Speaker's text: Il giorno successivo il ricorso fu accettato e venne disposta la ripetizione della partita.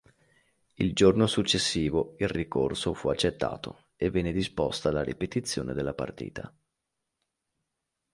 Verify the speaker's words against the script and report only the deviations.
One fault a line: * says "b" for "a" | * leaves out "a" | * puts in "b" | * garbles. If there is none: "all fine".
all fine